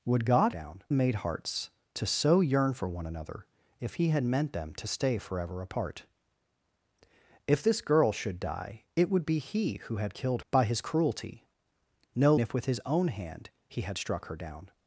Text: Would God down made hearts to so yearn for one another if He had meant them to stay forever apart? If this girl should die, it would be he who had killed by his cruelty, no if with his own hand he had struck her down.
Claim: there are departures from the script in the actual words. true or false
false